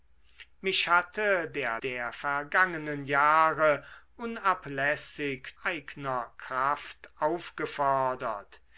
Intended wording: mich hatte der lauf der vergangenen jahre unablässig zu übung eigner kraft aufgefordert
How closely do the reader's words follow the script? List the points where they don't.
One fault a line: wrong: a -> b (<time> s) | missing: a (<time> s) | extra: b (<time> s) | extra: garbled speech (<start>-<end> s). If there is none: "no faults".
missing: lauf (1.8 s)
missing: zu übung (5.6 s)